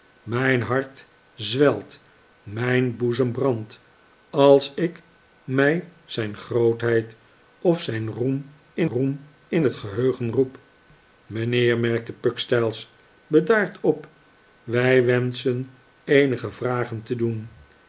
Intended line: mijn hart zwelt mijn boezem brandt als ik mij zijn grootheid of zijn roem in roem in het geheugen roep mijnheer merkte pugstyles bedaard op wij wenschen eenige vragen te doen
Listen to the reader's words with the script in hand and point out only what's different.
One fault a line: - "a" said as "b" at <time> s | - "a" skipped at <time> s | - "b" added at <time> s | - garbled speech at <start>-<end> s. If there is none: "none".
none